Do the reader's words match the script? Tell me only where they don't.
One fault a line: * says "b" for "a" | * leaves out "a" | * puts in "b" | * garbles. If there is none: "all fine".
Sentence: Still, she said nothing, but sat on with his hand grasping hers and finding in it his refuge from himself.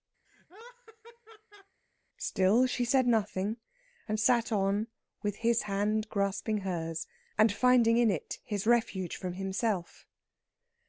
* says "and" for "but"